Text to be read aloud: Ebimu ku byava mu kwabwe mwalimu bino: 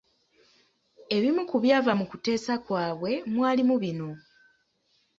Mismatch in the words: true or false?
true